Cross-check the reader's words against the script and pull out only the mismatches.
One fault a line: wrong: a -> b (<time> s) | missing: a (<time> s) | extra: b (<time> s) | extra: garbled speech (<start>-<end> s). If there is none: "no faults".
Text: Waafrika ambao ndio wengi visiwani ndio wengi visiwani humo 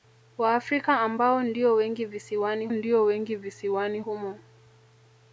no faults